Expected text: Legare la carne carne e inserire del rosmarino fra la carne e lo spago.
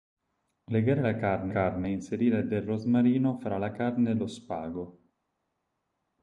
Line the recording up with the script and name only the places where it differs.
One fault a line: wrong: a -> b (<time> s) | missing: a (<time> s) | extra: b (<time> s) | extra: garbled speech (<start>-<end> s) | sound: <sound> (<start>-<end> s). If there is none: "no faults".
no faults